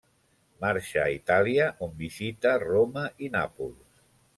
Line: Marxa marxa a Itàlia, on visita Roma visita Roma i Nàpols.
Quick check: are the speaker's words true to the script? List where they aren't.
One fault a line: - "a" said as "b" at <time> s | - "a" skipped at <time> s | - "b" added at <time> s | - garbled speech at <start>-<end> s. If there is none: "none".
- "marxa" skipped at 1.0 s
- "visita Roma" skipped at 3.1 s